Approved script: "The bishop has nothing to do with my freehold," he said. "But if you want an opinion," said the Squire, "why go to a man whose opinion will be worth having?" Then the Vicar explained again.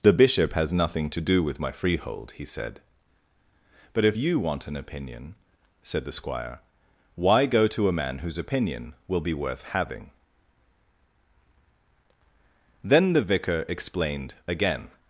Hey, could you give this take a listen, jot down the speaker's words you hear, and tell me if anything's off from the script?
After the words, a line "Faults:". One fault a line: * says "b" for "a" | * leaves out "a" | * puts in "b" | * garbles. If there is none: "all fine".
"The bishop has nothing to do with my freehold," he said. "But if you want an opinion," said the Squire, "why go to a man whose opinion will be worth having?" Then the Vicar explained again.
Faults:
all fine